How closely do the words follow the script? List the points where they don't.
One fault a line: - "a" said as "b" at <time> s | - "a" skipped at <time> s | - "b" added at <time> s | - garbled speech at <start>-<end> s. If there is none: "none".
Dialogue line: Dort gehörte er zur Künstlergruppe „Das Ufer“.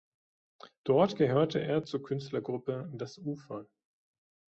none